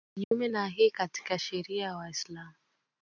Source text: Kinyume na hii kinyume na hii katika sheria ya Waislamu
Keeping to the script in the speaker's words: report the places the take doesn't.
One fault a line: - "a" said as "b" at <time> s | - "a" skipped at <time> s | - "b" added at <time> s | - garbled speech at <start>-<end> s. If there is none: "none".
- "kinyume na hii" skipped at 0.9 s